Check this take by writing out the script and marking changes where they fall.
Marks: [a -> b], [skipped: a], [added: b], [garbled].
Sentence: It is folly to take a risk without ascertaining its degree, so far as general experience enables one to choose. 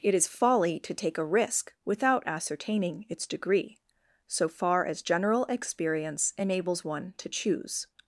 It is folly to take a risk without ascertaining its degree, so far as general experience enables one to choose.